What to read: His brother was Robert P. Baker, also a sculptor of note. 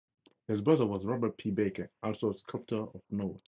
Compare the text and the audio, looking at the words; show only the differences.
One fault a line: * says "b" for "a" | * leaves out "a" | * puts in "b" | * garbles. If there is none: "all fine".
all fine